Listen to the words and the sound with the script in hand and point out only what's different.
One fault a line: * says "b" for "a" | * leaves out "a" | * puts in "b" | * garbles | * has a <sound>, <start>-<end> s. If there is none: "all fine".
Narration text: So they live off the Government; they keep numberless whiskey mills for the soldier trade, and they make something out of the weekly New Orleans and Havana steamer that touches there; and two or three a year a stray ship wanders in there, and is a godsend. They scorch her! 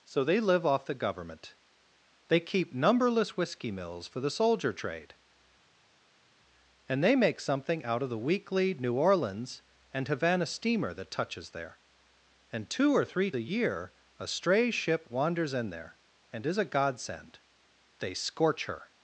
all fine